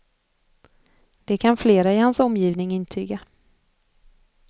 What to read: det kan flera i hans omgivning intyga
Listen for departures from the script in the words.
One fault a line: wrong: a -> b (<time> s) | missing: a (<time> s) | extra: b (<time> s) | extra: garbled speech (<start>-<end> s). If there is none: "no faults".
no faults